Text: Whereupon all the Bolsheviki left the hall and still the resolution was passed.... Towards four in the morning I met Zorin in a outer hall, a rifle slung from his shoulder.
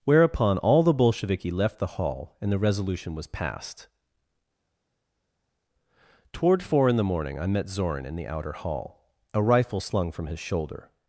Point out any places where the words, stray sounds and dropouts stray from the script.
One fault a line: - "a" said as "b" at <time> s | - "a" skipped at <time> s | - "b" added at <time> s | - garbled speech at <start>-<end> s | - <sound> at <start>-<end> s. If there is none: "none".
- "still" skipped at 2.5 s
- "Towards" said as "Toward" at 6.3 s
- "a" said as "the" at 8.1 s